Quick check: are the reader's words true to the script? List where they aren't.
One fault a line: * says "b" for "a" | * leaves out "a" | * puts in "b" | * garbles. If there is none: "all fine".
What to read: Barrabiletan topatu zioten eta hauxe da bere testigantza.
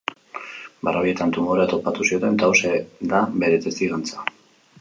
* puts in "tumorea"